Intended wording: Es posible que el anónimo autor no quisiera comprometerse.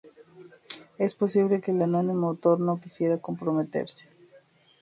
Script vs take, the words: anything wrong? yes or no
no